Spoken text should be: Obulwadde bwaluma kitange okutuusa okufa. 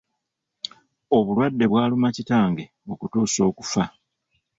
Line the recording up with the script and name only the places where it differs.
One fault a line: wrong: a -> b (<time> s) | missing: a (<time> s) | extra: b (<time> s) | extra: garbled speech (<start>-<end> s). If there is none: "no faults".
no faults